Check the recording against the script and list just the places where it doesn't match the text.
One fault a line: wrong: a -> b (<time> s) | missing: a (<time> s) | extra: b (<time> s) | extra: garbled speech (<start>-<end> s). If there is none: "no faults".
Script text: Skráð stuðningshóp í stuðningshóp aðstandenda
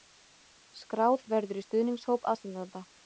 wrong: stuðningshóp -> verður (1.4 s)